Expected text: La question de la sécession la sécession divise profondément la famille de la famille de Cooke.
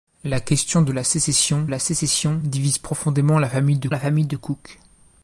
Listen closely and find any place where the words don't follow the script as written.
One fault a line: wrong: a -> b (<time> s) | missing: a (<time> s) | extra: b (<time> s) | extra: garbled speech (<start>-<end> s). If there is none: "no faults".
no faults